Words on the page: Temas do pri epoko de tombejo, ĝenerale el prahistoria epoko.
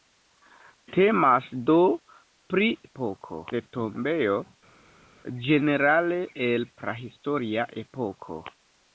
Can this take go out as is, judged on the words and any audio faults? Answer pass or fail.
pass